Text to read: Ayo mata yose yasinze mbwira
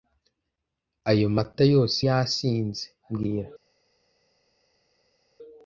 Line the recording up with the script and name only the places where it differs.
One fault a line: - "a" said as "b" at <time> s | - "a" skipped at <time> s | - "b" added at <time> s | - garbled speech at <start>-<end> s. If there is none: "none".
none